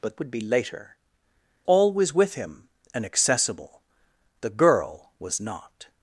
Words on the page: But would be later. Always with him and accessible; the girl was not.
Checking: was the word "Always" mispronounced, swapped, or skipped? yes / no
no